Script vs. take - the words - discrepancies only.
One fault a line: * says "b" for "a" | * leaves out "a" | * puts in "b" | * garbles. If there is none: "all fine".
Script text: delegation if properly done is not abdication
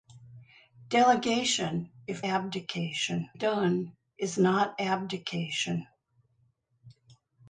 * says "abdication" for "properly"